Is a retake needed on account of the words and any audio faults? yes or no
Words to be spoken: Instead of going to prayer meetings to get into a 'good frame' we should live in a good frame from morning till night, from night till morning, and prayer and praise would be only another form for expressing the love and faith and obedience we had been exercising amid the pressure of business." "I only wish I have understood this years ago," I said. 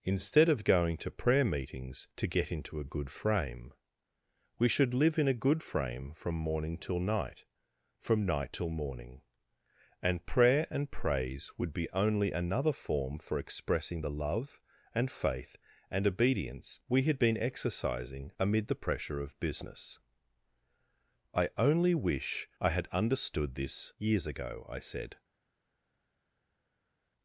yes